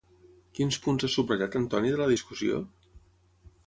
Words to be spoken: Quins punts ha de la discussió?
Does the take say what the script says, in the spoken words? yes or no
no